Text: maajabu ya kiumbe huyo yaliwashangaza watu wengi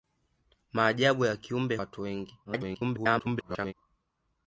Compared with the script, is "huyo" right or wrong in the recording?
wrong